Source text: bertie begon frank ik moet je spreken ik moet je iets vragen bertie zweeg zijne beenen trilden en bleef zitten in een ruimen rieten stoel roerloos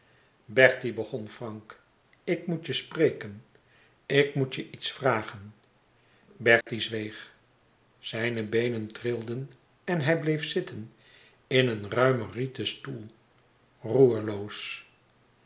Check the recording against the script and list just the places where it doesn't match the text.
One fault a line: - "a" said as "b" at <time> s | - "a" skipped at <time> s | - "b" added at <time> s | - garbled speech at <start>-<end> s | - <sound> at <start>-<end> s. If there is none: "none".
- dropout at 6.6-6.7 s
- "hij" added at 10.0 s